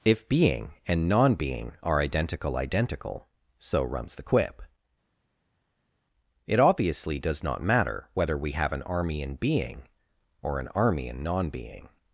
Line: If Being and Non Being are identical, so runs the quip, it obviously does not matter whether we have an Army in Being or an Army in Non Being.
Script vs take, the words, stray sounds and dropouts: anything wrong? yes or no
yes